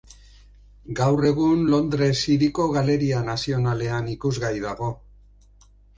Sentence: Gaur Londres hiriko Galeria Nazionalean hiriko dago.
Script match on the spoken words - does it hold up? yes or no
no